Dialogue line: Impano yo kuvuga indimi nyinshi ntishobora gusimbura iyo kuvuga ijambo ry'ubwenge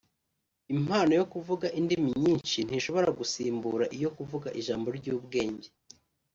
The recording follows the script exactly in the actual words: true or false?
true